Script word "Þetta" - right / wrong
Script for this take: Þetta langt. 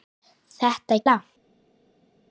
right